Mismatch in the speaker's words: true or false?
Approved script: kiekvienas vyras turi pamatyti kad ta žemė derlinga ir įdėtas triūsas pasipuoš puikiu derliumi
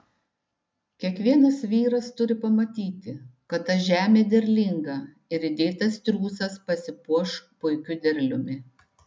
false